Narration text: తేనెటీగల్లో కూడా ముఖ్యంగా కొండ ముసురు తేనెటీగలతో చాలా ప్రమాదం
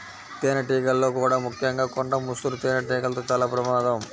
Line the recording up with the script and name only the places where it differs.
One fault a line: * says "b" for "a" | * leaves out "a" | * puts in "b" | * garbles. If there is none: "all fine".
all fine